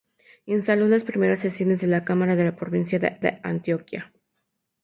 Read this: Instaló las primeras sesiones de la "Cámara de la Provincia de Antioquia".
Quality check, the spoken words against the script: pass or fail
fail